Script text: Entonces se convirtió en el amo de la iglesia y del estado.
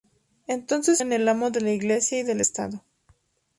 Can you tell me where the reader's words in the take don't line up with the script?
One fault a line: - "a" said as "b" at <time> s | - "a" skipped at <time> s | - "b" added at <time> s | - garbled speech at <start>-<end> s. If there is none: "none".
- "se convirtió" skipped at 1.0 s